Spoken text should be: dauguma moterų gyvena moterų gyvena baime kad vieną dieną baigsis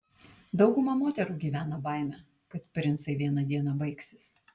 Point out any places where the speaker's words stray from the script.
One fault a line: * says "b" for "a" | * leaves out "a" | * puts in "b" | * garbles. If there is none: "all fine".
* leaves out "moterų gyvena"
* puts in "princai"